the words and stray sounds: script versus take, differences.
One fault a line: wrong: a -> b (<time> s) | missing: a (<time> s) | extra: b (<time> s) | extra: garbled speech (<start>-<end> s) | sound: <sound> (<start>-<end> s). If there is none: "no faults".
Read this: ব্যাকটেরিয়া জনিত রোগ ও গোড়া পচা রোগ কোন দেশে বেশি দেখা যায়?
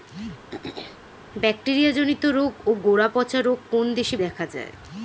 sound: throat clearing (0.5-1.0 s)
missing: বেশি (4.2 s)